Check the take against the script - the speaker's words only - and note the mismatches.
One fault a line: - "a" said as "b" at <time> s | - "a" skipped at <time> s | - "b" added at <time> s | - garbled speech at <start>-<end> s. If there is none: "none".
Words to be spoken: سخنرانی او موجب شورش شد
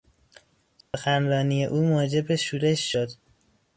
none